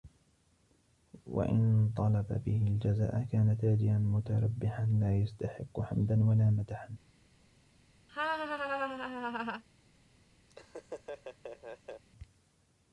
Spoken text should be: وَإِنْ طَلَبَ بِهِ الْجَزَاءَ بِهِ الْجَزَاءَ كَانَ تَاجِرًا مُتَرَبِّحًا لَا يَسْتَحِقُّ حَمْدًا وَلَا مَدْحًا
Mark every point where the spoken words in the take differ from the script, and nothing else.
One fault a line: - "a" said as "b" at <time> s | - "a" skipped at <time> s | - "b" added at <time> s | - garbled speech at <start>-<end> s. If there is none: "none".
- "بِهِ الْجَزَاءَ" skipped at 3.2 s